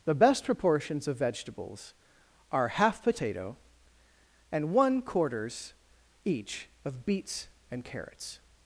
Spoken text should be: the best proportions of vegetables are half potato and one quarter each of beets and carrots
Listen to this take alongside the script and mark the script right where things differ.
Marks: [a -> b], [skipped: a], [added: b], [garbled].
the best proportions of vegetables are half potato and one [quarter -> quarters] each of beets and carrots